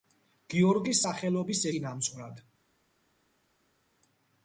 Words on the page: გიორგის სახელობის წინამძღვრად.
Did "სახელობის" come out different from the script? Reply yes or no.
no